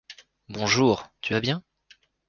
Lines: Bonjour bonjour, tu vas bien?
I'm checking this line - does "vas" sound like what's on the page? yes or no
yes